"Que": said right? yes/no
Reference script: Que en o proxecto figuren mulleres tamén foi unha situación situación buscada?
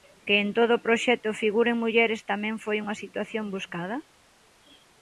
yes